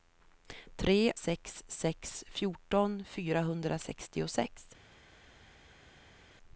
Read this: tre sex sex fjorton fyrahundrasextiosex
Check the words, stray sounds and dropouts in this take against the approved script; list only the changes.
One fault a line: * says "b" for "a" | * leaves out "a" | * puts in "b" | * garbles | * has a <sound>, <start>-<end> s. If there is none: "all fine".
all fine